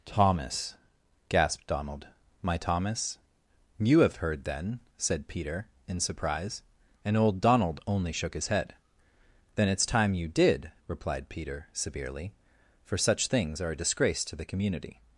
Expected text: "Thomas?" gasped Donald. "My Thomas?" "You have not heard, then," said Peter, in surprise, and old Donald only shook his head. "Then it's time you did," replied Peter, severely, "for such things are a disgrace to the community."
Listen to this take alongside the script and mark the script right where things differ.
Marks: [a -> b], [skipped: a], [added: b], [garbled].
"Thomas?" gasped Donald. "My Thomas?" "You have [skipped: not] heard, then," said Peter, in surprise, and old Donald only shook his head. "Then it's time you did," replied Peter, severely, "for such things are a disgrace to the community."